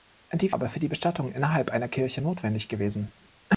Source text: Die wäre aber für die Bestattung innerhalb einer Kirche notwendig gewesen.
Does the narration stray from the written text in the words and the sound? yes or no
yes